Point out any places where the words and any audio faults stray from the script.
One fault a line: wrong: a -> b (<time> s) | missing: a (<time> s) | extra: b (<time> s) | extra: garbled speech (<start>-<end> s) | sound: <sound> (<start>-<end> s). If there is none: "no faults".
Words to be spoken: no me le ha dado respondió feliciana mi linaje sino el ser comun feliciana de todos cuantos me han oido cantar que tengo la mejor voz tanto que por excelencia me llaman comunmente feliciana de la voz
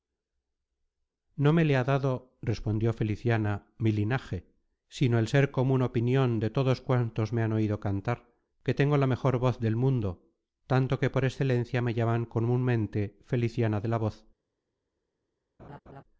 wrong: feliciana -> opinion (5.8 s)
extra: del mundo (9.6 s)
sound: laugh (15.6-16.0 s)